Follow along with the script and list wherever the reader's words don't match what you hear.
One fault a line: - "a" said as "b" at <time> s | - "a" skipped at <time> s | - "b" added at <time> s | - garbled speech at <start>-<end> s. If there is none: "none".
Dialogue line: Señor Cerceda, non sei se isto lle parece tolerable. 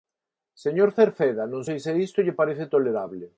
none